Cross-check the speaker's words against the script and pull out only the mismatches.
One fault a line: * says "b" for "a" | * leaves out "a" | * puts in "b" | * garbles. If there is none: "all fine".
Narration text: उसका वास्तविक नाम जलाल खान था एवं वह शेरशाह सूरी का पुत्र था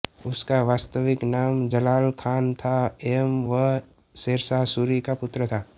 all fine